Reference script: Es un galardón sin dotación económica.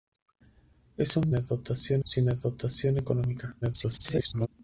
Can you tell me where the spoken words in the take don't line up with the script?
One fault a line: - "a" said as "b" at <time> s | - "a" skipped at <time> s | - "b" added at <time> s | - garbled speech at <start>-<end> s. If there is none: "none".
- "galardón" said as "dotación" at 1.3 s
- garbled speech at 3.6-4.5 s